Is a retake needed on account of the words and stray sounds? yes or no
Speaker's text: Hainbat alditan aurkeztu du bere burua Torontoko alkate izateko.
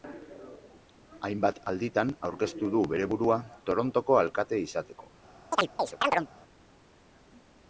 yes